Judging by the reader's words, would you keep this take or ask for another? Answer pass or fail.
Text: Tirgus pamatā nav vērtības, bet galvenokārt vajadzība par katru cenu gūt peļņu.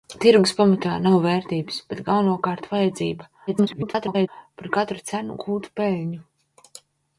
fail